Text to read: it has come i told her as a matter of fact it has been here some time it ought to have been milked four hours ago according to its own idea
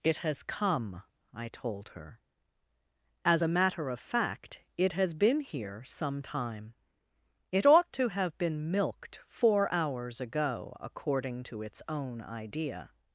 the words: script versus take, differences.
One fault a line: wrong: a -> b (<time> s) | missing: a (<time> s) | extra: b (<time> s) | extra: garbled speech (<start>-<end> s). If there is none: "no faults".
no faults